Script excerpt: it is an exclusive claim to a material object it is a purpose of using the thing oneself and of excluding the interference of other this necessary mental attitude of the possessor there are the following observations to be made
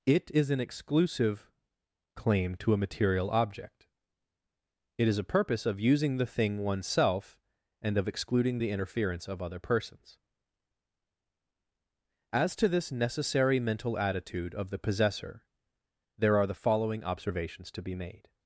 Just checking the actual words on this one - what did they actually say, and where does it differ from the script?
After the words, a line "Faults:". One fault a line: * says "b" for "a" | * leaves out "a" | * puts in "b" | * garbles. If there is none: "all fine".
it is an exclusive claim to a material object it is a purpose of using the thing oneself and of excluding the interference of other persons as to this necessary mental attitude of the possessor there are the following observations to be made
Faults:
* puts in "persons as to"